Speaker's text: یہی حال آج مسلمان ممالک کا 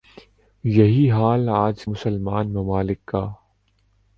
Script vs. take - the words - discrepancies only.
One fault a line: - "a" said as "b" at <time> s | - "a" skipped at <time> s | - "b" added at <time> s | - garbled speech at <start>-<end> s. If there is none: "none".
none